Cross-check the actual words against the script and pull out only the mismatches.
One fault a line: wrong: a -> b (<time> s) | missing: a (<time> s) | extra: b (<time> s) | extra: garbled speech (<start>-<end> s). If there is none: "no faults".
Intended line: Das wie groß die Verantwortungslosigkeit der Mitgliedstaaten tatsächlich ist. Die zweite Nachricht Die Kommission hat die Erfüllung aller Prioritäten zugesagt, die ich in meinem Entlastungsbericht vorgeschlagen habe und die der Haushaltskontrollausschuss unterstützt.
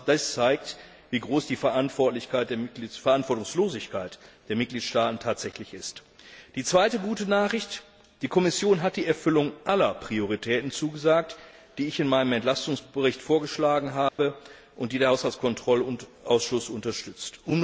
extra: zeigt (0.3 s)
extra: gute (7.0 s)